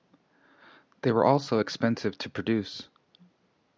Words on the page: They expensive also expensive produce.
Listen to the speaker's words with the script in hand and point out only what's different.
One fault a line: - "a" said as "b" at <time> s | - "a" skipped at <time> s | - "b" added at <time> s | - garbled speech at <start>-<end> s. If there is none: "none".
- "expensive" said as "were" at 1.1 s
- "to" added at 2.2 s